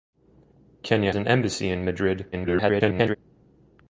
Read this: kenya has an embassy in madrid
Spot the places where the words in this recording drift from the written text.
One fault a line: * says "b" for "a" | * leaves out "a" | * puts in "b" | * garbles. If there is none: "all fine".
* leaves out "has"
* garbles